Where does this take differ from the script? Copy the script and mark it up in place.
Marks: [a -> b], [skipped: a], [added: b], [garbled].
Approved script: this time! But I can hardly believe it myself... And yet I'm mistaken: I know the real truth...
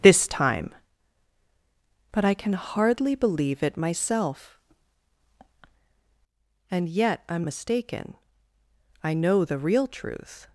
this time! But I can hardly believe it myself... And yet I'm mistaken: I know the real truth...